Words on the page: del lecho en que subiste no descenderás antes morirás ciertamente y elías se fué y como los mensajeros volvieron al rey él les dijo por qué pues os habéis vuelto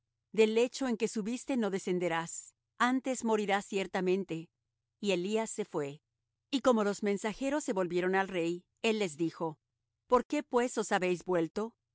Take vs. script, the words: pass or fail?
fail